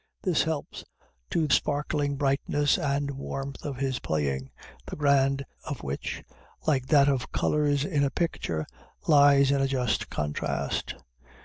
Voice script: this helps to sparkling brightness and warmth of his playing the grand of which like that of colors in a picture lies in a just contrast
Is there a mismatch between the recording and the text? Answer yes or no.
no